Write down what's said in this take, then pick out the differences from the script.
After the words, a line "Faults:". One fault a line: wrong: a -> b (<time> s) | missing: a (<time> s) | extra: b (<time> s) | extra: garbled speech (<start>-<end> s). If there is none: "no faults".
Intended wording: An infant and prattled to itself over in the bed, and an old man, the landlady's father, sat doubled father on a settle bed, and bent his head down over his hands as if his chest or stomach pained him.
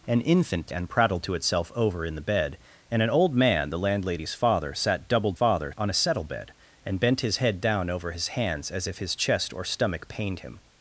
An infant and prattled to itself over in the bed, and an old man, the landlady's father, sat doubled father on a settle bed, and bent his head down over his hands as if his chest or stomach pained him.
Faults:
no faults